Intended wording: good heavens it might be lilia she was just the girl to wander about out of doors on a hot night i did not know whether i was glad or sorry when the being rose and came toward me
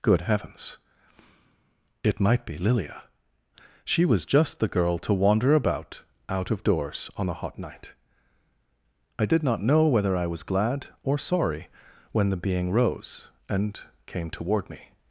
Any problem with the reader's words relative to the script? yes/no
no